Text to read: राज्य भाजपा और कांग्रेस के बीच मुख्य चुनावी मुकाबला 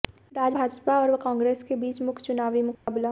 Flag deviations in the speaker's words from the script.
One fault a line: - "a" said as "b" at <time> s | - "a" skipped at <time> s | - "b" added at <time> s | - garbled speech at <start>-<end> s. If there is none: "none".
none